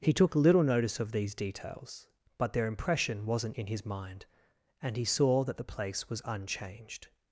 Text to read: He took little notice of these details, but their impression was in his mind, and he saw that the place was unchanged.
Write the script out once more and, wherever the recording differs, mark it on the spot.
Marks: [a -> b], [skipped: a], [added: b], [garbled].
He took little notice of these details, but their impression [was -> wasn't] in his mind, and he saw that the place was unchanged.